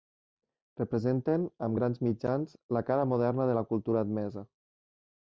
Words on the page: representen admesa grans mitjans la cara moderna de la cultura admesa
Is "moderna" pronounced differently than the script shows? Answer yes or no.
no